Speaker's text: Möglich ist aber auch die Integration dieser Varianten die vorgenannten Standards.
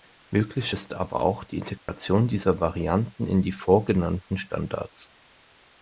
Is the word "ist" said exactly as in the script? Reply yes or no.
yes